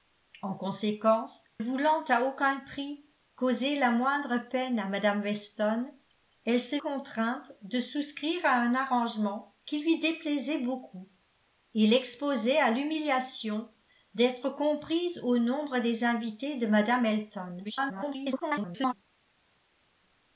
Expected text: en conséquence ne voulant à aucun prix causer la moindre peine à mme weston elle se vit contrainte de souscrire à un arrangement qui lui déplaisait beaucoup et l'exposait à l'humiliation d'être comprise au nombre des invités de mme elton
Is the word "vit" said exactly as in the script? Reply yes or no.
no